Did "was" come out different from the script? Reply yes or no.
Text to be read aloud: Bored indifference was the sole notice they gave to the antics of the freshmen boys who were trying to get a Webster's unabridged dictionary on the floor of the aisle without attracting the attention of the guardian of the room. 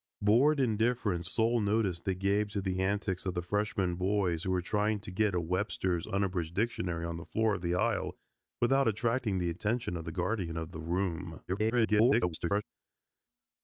yes